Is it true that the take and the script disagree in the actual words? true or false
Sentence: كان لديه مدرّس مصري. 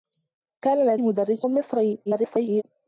true